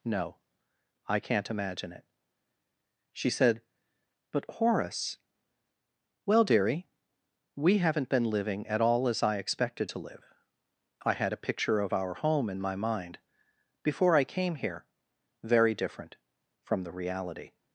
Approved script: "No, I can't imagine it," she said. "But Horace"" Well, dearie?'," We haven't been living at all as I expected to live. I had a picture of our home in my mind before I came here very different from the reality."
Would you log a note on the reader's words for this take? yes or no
no